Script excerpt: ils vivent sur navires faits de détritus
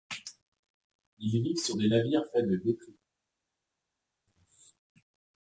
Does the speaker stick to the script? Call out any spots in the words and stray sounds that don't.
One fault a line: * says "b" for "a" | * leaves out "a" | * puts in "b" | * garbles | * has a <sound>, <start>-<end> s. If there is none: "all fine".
* puts in "des"